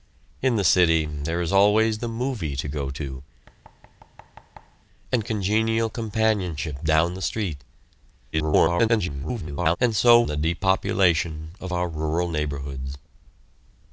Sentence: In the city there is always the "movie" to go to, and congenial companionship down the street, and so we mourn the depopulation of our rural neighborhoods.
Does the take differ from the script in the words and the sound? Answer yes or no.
yes